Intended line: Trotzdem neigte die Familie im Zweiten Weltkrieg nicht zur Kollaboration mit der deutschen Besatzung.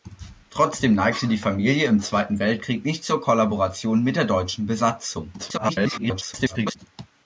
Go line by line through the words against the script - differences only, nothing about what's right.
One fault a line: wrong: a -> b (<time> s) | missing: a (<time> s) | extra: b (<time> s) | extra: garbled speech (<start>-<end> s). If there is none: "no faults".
extra: garbled speech (5.4-6.8 s)